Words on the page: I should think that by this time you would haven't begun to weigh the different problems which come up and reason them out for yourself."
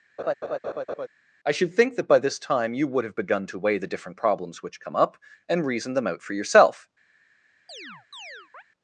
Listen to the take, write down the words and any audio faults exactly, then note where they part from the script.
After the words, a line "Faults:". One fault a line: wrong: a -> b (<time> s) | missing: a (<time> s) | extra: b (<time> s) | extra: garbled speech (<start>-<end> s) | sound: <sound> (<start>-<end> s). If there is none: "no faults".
I should think that by this time you would have begun to weigh the different problems which come up and reason them out for yourself."
Faults:
sound: laugh (0.2-1.1 s)
wrong: haven't -> have (3.0 s)
sound: chirp (7.7-8.6 s)